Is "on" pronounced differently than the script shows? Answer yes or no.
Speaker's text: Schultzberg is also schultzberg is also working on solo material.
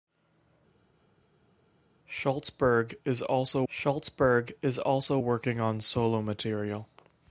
no